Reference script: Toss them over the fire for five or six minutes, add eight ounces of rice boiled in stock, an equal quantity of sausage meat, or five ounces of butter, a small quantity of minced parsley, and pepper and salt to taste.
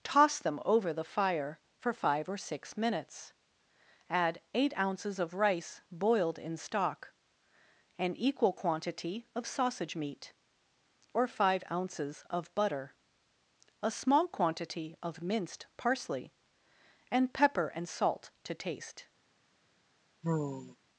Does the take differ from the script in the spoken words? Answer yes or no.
no